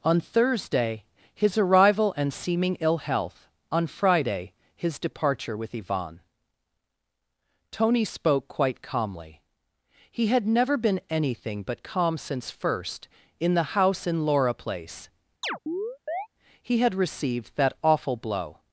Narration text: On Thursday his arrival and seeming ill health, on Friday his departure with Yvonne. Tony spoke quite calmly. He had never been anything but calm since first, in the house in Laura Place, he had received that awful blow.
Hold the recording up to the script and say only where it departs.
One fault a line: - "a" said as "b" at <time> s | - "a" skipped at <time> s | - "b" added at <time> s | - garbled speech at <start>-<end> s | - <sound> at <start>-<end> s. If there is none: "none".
- chirp at 15.4-16.3 s